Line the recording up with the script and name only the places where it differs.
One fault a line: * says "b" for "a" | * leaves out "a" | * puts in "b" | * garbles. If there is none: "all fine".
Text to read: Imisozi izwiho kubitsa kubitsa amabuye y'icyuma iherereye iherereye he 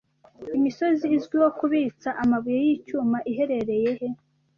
* leaves out "kubitsa"
* leaves out "iherereye"